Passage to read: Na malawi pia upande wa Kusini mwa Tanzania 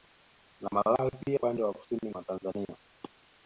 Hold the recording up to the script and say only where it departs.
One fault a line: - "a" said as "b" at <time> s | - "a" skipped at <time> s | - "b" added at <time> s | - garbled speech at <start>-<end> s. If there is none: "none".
none